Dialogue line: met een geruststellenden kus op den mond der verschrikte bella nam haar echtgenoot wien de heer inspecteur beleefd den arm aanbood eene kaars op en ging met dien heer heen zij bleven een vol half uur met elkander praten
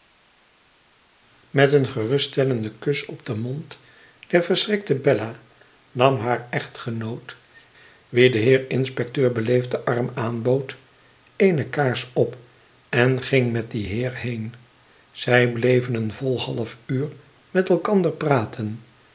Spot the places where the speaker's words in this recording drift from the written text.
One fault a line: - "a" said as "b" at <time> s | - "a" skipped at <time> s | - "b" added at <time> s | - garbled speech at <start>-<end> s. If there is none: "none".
none